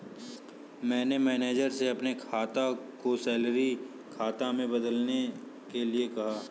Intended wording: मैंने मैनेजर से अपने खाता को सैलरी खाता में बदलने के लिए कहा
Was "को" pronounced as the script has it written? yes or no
yes